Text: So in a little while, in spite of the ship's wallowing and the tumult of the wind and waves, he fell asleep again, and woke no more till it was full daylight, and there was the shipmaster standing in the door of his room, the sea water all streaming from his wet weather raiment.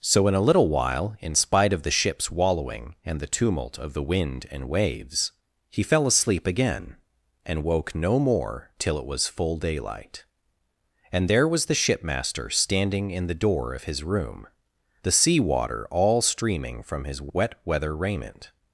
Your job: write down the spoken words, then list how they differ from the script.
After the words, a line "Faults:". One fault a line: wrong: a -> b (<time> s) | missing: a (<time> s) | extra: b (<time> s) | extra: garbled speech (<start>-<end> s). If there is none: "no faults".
So in a little while, in spite of the ship's wallowing and the tumult of the wind and waves, he fell asleep again, and woke no more till it was full daylight, and there was the shipmaster standing in the door of his room, the sea water all streaming from his wet weather raiment.
Faults:
no faults